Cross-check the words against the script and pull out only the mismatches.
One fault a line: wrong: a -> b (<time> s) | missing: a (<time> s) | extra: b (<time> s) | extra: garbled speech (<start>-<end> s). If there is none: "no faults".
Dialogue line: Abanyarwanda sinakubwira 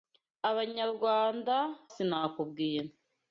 no faults